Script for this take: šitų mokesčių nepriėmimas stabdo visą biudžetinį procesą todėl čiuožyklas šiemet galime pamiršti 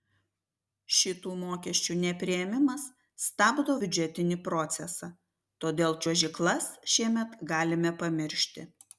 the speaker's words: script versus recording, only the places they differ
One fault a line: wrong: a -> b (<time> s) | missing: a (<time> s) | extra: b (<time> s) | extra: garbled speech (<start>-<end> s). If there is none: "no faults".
missing: visą (3.8 s)